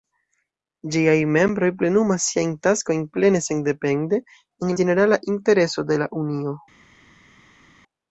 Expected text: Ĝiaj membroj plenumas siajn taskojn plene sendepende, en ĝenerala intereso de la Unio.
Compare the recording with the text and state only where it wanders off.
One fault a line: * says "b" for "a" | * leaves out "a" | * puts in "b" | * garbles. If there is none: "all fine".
all fine